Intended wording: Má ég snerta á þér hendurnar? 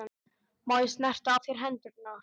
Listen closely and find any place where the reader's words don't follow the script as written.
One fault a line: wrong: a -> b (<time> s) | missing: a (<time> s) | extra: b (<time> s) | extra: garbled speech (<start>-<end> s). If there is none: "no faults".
no faults